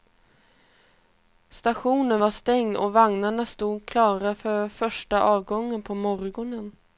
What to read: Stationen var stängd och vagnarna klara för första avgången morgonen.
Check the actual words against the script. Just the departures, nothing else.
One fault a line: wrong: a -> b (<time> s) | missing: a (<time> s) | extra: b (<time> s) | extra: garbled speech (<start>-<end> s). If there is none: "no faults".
extra: stod (3.5 s)
extra: på (5.8 s)